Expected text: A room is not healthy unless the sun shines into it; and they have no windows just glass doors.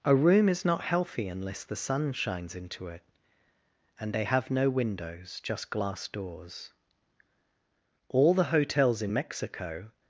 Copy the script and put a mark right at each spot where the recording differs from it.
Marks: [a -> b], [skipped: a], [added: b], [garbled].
A room is not healthy unless the sun shines into it; and they have no windows just glass doors. [added: All the hotels in Mexico]